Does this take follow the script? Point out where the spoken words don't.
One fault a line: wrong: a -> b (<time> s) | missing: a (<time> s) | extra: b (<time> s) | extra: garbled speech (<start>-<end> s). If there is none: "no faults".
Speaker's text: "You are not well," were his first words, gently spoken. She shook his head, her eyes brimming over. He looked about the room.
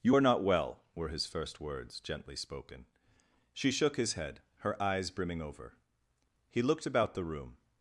no faults